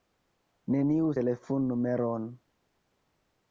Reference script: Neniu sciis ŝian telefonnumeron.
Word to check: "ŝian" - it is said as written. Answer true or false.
false